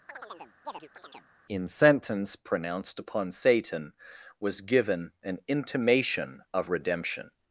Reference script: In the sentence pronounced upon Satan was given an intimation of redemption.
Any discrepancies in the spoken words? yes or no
yes